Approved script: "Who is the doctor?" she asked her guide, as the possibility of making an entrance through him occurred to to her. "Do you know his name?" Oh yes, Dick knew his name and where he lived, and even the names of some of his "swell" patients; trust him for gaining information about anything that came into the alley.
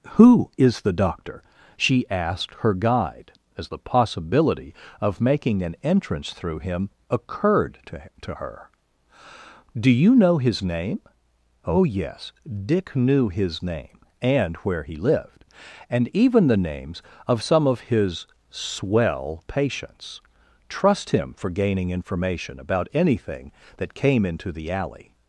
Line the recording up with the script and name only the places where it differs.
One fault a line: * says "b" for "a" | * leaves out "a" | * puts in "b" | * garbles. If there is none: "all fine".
all fine